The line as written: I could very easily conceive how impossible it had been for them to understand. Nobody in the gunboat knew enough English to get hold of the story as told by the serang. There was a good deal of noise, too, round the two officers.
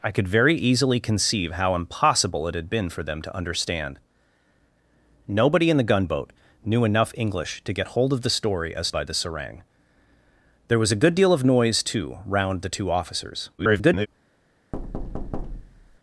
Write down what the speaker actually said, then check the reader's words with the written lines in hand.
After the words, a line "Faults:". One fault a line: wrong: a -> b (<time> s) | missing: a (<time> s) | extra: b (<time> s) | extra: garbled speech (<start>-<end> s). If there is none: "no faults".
I could very easily conceive how impossible it had been for them to understand. Nobody in the gunboat knew enough English to get hold of the story as by the serang. There was a good deal of noise, too, round the two officers. [garbled]
Faults:
missing: told (8.9 s)
extra: garbled speech (13.6-14.1 s)